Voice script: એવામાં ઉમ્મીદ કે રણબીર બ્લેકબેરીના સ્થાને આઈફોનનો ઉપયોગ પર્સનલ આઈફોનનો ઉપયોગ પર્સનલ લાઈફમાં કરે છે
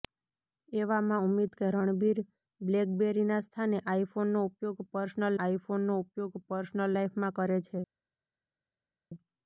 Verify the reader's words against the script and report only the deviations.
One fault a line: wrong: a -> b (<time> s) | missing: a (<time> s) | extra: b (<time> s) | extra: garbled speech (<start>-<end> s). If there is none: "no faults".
no faults